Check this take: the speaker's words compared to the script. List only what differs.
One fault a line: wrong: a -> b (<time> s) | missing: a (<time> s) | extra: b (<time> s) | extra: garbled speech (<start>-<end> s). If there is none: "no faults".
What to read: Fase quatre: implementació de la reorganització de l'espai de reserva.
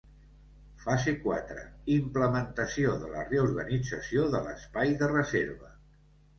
no faults